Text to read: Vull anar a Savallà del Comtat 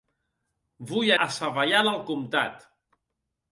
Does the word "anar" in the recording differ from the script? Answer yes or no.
yes